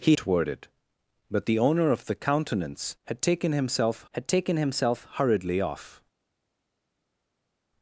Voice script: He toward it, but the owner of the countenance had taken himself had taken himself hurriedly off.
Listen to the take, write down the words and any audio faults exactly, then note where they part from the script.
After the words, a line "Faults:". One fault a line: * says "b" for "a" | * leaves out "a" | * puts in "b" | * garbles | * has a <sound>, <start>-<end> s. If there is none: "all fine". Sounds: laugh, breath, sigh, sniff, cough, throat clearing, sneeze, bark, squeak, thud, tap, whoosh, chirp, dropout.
He toward it, but the owner of the countenance had taken himself had taken himself hurriedly off.
Faults:
all fine